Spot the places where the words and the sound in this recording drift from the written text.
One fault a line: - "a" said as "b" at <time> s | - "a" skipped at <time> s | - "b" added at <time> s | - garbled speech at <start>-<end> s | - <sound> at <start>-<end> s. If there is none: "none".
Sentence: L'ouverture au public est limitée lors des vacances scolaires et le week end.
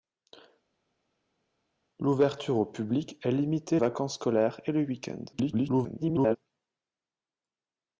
- "lors des" skipped at 3.8 s
- garbled speech at 5.3-6.4 s